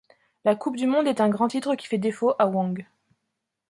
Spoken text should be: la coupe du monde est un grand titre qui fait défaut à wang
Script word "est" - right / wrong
right